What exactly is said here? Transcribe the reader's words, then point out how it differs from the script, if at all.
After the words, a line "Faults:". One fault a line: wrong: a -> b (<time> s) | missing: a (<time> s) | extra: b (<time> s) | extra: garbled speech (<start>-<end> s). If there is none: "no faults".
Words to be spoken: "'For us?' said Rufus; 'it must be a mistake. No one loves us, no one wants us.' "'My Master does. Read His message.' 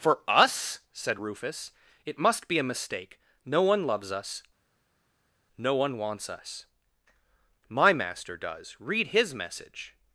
"'For us?' said Rufus; 'it must be a mistake. No one loves us, no one wants us.' "'My Master does. Read His message.'
Faults:
no faults